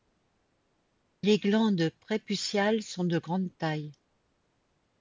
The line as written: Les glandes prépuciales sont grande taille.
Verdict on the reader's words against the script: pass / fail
fail